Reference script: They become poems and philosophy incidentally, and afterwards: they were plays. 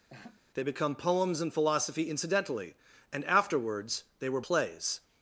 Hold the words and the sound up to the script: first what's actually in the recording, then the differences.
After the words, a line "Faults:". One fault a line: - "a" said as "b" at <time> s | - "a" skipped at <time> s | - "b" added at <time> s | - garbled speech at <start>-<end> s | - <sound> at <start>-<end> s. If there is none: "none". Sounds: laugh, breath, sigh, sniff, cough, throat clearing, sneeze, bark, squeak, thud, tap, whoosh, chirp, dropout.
They become poems and philosophy incidentally, and afterwards: they were plays.
Faults:
- laugh at 0.1-0.4 s